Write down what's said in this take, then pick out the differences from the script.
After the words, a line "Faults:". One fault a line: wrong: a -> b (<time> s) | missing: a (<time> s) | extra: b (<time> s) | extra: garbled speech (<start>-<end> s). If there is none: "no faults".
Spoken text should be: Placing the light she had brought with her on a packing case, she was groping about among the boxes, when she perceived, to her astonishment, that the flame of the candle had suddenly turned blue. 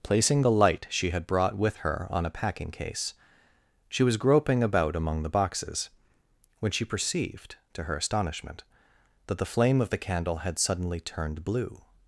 Placing the light she had brought with her on a packing case, she was groping about among the boxes, when she perceived, to her astonishment, that the flame of the candle had suddenly turned blue.
Faults:
no faults